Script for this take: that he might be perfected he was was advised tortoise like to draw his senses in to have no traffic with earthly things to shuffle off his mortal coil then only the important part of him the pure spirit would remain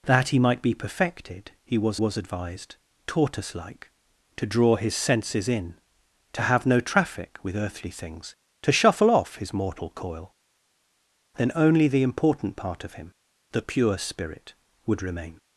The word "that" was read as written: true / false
true